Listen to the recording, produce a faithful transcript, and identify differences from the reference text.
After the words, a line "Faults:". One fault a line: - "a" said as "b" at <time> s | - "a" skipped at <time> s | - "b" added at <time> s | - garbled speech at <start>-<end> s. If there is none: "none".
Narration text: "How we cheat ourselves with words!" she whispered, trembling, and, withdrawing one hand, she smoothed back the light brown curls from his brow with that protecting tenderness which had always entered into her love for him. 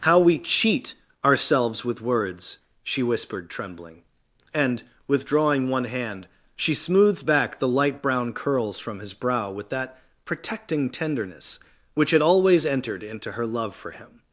"How we cheat ourselves with words!" she whispered, trembling, and, withdrawing one hand, she smoothed back the light brown curls from his brow with that protecting tenderness which had always entered into her love for him.
Faults:
none